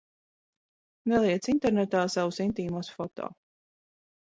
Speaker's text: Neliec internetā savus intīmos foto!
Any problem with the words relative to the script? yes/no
no